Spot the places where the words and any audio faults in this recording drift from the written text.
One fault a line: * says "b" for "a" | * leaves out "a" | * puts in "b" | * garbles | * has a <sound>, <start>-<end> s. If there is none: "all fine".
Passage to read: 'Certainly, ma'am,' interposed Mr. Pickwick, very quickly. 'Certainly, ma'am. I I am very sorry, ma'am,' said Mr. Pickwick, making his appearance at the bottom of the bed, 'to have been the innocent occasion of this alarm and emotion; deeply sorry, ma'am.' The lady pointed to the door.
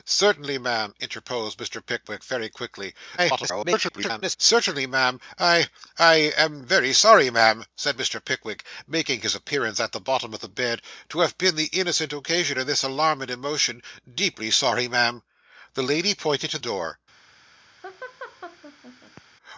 * garbles
* leaves out "the"
* has a laugh, 17.8-19.2 s